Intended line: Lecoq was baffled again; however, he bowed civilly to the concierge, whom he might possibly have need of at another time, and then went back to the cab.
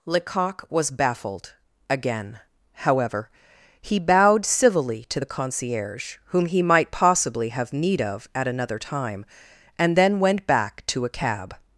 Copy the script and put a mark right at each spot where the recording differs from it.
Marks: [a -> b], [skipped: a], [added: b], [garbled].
Lecoq was baffled again; however, he bowed civilly to the concierge, whom he might possibly have need of at another time, and then went back to [the -> a] cab.